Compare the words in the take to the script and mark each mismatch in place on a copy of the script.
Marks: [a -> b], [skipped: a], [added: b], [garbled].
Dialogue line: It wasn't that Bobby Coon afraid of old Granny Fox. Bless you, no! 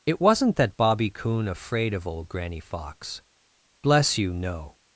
It wasn't that Bobby Coon afraid of old Granny Fox. Bless you, no!